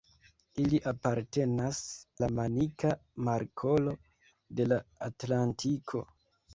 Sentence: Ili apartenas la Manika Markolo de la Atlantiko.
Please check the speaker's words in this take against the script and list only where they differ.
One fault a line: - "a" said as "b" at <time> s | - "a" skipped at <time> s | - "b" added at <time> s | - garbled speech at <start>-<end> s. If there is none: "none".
none